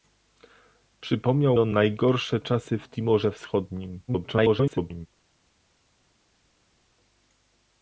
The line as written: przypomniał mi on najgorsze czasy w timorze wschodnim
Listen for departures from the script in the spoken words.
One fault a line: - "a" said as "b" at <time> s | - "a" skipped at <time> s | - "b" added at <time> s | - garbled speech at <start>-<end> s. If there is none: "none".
- "mi" skipped at 1.6 s
- garbled speech at 4.1-5.1 s